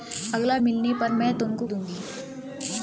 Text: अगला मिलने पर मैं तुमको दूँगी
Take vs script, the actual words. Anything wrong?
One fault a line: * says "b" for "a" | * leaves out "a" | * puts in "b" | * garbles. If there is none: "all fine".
all fine